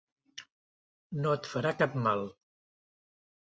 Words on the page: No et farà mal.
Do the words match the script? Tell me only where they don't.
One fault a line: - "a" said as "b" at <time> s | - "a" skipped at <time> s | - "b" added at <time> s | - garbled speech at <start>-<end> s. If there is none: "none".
- "cap" added at 1.8 s